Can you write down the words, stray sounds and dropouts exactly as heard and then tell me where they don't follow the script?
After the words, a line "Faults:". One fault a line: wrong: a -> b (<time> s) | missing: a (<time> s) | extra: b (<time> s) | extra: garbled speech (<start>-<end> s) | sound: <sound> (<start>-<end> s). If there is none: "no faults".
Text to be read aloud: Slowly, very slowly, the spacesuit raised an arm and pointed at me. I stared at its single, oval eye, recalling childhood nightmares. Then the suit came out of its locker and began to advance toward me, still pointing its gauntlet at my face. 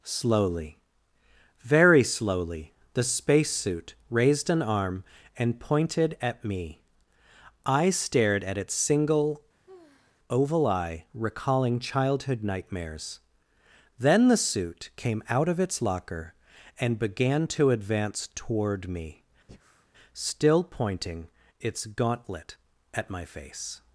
Slowly, very slowly, the spacesuit raised an arm and pointed at me. I stared at its single, oval eye, recalling childhood nightmares. Then the suit came out of its locker and began to advance toward me, still pointing its gauntlet at my face.
Faults:
sound: sigh (9.7-10.2 s)
sound: breath (19.5-19.9 s)